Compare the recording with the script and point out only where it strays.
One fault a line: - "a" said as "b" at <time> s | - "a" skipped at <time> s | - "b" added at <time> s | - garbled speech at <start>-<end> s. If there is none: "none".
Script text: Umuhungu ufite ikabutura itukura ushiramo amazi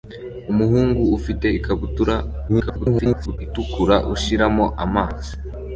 - garbled speech at 2.5-3.4 s